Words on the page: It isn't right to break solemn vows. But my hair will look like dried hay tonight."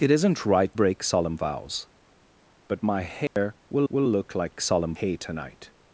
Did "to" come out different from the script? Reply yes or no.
yes